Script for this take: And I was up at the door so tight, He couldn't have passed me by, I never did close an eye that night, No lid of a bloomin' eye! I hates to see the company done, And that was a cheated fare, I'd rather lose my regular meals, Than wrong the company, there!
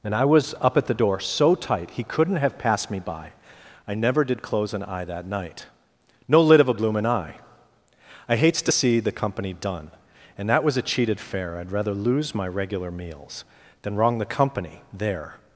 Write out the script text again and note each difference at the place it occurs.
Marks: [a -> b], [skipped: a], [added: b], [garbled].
And I was up at the door so tight, He couldn't have passed me by, I never did close an eye that night, No lid of a bloomin' eye! I hates to see the company done, And that was a cheated fare, I'd rather lose my regular meals, Than wrong the company, there!